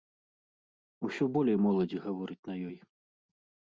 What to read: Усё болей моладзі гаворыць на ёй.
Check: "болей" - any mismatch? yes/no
no